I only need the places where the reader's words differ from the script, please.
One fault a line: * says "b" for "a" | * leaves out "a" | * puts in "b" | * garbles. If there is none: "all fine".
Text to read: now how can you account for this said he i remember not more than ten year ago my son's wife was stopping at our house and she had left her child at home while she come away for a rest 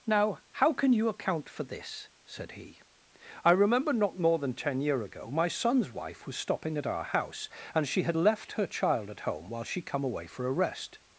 all fine